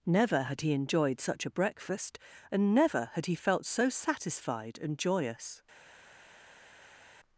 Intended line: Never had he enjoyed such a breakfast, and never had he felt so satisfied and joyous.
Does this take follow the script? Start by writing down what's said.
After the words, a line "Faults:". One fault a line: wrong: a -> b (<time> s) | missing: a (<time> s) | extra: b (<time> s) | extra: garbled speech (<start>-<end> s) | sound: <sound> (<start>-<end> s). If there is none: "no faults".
Never had he enjoyed such a breakfast, and never had he felt so satisfied and joyous.
Faults:
no faults